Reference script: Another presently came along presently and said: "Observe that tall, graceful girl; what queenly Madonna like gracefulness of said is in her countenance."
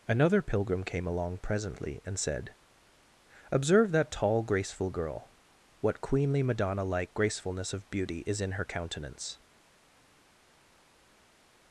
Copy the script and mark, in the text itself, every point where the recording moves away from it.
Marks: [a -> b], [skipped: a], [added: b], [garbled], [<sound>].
Another [presently -> pilgrim] came along presently and said: "Observe that tall, graceful girl; what queenly Madonna like gracefulness of [said -> beauty] is in her countenance."